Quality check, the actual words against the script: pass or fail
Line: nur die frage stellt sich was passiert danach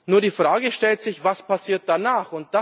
pass